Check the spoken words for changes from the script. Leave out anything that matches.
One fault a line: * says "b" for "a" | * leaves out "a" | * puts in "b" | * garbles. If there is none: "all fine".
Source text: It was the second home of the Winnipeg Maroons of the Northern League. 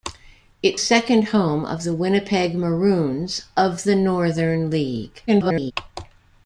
* leaves out "was the"
* garbles